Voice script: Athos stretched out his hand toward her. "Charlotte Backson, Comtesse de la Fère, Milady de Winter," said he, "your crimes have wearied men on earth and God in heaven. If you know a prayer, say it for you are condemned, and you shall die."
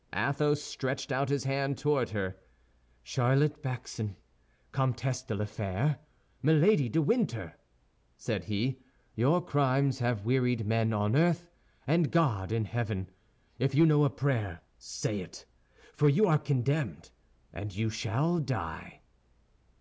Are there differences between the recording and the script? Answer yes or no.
no